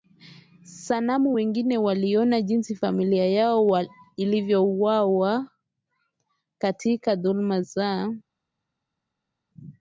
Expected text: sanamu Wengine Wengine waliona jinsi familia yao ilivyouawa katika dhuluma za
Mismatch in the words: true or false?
true